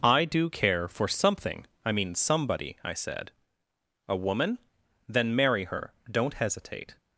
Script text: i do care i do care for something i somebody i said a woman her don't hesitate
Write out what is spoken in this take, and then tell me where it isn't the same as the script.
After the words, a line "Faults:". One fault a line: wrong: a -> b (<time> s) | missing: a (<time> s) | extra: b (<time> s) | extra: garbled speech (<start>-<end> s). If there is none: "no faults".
i do care for something i mean somebody i said a woman then marry her don't hesitate
Faults:
missing: i do care (0.9 s)
extra: mean (1.9 s)
extra: then marry (5.1 s)